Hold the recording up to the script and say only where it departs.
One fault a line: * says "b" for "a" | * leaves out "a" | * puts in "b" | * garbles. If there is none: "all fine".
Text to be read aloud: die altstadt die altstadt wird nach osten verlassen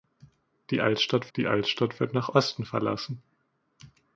all fine